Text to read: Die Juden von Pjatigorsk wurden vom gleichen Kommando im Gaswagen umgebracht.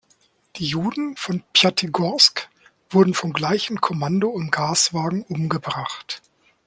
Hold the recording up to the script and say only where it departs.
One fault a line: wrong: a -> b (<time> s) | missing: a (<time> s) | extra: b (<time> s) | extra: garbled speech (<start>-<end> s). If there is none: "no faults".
no faults